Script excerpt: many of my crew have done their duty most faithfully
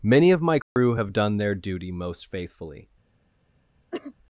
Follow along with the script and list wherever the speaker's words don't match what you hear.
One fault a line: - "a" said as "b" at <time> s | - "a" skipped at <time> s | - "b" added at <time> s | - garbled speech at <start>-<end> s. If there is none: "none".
none